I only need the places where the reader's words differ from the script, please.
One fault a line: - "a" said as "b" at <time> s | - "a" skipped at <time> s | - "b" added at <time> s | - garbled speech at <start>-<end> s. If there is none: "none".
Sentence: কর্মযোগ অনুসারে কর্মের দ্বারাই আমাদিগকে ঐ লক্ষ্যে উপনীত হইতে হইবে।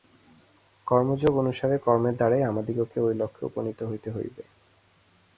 none